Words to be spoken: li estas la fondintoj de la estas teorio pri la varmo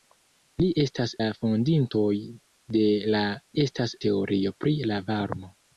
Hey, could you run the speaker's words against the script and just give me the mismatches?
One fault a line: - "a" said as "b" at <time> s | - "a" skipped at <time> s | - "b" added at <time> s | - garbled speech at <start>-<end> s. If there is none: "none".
none